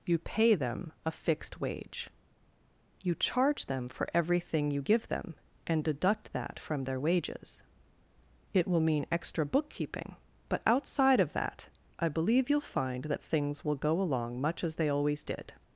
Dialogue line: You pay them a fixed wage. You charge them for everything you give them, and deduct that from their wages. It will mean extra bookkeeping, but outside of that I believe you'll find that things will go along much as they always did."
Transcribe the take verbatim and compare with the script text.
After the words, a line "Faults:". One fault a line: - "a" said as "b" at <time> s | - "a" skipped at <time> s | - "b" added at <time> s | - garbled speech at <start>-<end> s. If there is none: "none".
You pay them a fixed wage. You charge them for everything you give them, and deduct that from their wages. It will mean extra bookkeeping, but outside of that I believe you'll find that things will go along much as they always did."
Faults:
none